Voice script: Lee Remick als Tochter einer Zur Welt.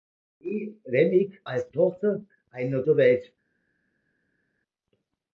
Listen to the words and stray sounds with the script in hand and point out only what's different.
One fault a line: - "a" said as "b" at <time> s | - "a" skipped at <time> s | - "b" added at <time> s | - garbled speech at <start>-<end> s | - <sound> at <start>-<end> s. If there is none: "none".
none